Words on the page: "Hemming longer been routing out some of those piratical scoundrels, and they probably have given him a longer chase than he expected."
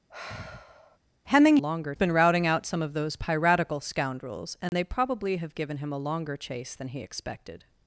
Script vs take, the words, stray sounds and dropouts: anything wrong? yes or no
yes